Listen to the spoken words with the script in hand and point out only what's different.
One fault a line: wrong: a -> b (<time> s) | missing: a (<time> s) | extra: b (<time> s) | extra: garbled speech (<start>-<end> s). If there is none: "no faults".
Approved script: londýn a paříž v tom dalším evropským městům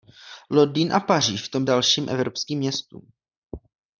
no faults